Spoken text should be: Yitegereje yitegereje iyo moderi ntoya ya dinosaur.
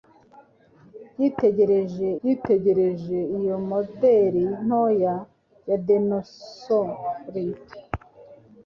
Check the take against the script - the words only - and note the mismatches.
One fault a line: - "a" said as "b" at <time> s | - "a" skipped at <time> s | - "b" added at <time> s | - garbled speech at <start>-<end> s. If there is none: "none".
none